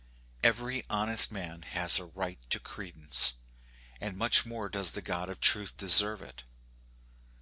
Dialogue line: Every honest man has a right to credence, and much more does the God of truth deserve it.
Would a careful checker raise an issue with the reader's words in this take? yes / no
no